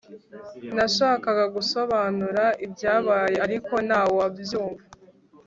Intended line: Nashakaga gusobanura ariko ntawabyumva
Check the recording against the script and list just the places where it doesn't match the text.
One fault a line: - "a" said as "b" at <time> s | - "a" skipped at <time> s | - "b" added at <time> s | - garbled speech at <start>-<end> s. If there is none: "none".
- "ibyabaye" added at 2.6 s